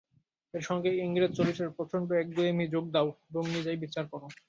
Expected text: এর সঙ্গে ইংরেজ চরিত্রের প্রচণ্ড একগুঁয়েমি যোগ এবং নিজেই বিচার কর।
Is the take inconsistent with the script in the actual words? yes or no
yes